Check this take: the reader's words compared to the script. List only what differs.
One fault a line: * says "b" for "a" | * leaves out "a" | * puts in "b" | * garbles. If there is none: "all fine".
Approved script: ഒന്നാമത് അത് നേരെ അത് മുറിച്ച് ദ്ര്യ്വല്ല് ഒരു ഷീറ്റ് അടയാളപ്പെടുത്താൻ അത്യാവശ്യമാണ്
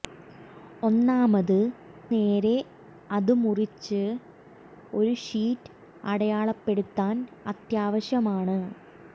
* leaves out "അത്"
* leaves out "ദ്ര്യ്വല്ല്"